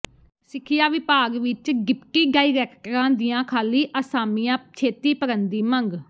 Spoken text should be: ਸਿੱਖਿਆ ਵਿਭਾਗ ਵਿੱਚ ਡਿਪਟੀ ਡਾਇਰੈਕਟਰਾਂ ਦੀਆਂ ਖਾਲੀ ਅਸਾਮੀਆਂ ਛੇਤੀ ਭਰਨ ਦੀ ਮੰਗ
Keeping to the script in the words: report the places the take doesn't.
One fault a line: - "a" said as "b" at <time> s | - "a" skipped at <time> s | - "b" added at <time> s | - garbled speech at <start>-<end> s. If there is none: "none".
none